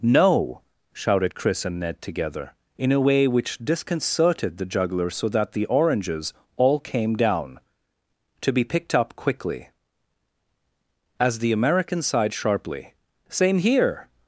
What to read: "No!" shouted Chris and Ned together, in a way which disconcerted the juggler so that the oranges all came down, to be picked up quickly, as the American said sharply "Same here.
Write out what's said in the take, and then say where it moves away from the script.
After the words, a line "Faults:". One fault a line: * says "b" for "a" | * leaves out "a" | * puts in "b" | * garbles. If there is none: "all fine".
"No!" shouted Chris and Ned together, in a way which disconcerted the juggler so that the oranges all came down, to be picked up quickly, as the American sighed sharply "Same here.
Faults:
* says "sighed" for "said"